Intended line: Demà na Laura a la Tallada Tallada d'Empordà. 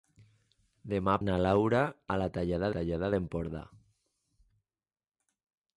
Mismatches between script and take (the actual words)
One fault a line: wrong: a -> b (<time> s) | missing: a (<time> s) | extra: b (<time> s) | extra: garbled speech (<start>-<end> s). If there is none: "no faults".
no faults